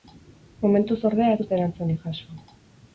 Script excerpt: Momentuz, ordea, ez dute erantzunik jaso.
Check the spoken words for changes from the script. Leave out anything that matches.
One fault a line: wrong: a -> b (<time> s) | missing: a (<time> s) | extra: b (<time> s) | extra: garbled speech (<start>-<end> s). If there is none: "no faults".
no faults